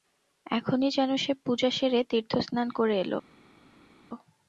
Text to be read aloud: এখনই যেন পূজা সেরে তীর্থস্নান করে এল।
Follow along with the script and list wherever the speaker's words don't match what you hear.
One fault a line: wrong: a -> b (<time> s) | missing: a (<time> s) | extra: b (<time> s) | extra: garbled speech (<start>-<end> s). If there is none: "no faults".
extra: সে (1.2 s)